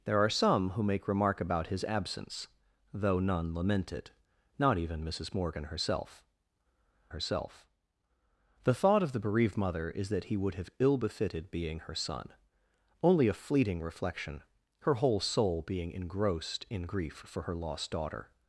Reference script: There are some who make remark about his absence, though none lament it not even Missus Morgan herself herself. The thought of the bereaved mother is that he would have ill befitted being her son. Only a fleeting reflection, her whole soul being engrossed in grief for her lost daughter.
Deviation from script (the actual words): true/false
false